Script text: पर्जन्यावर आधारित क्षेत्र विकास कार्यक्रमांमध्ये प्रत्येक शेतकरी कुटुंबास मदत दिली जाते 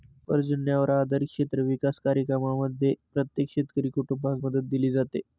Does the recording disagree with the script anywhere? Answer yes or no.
no